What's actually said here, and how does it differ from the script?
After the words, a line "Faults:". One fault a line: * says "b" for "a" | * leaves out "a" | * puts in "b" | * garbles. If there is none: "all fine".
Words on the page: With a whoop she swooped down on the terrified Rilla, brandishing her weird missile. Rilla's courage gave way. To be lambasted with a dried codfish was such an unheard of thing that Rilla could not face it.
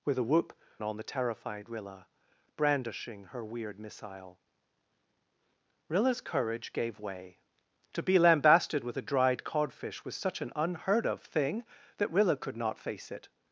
With a whoop on the terrified Rilla, brandishing her weird missile. Rilla's courage gave way. To be lambasted with a dried codfish was such an unheard of thing that Rilla could not face it.
Faults:
* leaves out "she swooped down"